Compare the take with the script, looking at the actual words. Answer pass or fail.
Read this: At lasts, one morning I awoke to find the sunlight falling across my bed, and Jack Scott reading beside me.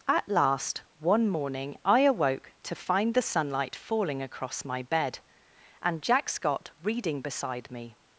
fail